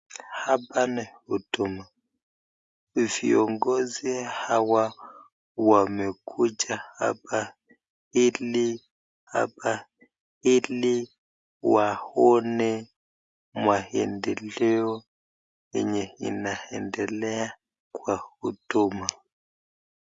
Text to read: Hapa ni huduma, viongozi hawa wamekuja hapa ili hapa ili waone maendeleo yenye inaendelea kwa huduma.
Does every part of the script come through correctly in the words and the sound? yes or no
yes